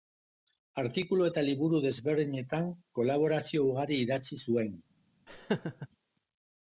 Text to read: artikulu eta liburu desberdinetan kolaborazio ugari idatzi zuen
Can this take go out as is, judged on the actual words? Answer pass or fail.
pass